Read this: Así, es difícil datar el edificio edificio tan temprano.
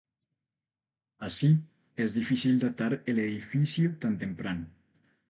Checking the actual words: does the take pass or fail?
fail